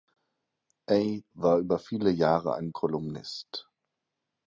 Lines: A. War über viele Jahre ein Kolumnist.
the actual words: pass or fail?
pass